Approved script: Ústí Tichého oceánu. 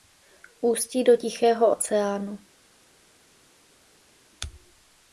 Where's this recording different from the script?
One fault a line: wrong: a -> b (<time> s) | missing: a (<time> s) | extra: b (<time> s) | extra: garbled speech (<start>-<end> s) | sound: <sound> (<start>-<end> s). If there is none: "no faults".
extra: do (1.0 s)